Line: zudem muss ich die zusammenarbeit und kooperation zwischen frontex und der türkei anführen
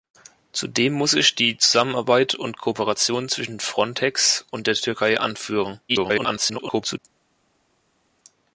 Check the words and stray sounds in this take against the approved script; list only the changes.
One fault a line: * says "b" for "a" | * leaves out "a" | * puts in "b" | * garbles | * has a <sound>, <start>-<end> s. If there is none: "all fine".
* garbles